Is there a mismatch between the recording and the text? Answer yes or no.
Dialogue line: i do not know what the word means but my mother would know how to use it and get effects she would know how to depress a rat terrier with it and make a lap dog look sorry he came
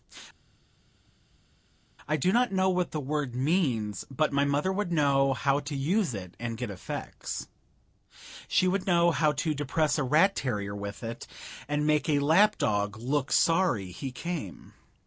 no